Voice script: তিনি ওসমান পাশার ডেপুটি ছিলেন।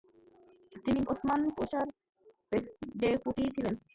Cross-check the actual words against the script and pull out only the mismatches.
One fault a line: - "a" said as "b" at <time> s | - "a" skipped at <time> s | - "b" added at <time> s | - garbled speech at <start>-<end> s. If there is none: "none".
none